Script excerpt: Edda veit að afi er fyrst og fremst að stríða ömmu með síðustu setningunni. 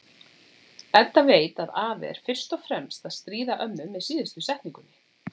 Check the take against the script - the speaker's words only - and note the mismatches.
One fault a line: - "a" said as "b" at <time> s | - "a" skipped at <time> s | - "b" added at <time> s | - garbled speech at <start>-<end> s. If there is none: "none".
none